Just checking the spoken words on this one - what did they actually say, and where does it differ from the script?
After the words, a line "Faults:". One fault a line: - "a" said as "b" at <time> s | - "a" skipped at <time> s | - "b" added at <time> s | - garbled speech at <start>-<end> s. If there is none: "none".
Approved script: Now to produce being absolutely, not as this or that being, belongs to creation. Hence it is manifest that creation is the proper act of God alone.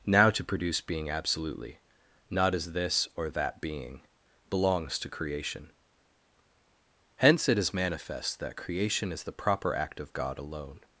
Now to produce being absolutely, not as this or that being, belongs to creation. Hence it is manifest that creation is the proper act of God alone.
Faults:
none